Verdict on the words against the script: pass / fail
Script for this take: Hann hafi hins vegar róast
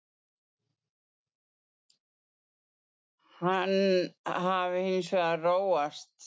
pass